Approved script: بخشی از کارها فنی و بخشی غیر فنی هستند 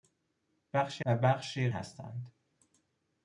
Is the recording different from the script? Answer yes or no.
yes